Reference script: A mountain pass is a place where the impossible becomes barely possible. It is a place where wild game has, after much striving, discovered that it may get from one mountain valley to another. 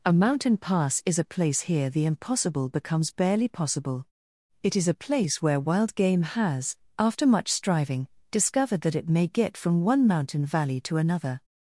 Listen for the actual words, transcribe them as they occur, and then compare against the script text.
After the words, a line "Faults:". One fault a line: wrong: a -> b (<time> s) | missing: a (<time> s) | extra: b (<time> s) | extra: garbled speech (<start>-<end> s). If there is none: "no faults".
A mountain pass is a place here the impossible becomes barely possible. It is a place where wild game has, after much striving, discovered that it may get from one mountain valley to another.
Faults:
wrong: where -> here (1.6 s)